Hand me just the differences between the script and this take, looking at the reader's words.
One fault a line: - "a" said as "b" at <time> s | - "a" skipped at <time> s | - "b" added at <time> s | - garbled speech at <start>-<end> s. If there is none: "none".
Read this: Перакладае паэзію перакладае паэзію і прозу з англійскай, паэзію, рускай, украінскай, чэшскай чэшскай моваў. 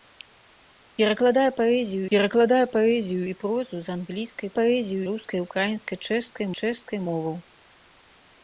none